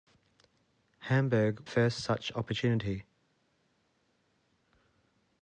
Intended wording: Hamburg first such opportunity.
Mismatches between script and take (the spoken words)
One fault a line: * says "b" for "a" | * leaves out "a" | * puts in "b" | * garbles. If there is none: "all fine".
all fine